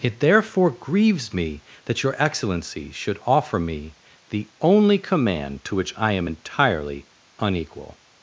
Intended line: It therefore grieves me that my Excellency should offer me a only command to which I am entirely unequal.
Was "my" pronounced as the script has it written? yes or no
no